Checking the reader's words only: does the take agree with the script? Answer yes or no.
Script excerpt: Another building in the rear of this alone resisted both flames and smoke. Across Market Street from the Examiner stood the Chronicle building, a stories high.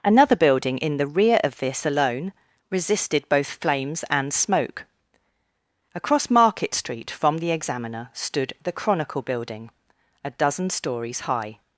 no